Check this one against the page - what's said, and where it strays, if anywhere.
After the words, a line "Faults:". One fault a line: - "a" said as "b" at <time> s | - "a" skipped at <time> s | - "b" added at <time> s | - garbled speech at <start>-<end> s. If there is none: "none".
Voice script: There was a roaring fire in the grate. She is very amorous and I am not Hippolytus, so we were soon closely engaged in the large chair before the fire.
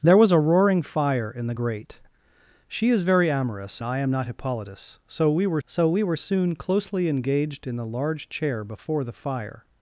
There was a roaring fire in the grate. She is very amorous I am not Hippolytus, so we were so we were soon closely engaged in the large chair before the fire.
Faults:
- "and" skipped at 3.8 s
- "so we were" added at 5.7 s